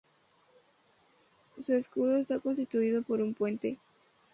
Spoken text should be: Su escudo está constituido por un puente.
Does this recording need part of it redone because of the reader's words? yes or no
no